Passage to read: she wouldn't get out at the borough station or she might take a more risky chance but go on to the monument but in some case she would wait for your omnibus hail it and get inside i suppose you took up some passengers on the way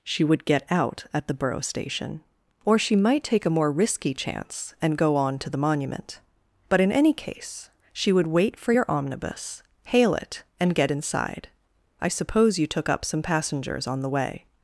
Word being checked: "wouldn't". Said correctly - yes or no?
no